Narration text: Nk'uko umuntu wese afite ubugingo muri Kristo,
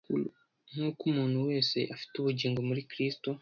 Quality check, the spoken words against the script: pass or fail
pass